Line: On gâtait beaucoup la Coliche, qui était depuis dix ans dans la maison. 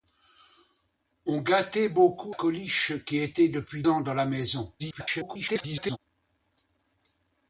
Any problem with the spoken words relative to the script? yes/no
yes